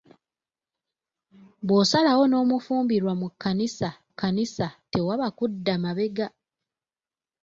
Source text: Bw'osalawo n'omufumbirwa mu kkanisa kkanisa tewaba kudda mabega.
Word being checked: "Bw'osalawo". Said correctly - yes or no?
yes